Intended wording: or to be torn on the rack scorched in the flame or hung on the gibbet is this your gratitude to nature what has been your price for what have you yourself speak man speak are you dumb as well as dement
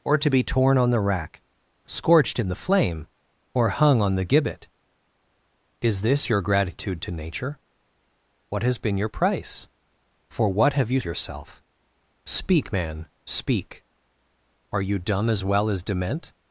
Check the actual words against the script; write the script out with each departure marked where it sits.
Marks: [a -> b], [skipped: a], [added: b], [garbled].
or to be torn on the rack scorched in the flame or hung on the gibbet is this your gratitude to nature what has been your price for what have you yourself speak man speak are you dumb as well as dement